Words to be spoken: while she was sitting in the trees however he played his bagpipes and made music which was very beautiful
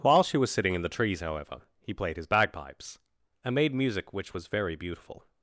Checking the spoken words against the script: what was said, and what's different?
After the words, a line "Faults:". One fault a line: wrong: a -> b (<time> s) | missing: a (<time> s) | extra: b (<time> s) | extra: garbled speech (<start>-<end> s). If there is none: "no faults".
while she was sitting in the trees however he played his bagpipes and made music which was very beautiful
Faults:
no faults